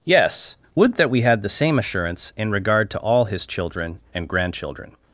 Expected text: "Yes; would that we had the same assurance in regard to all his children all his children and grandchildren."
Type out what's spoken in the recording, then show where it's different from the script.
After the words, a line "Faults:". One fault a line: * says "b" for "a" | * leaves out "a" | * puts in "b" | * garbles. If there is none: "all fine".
"Yes; would that we had the same assurance in regard to all his children and grandchildren."
Faults:
* leaves out "all his children"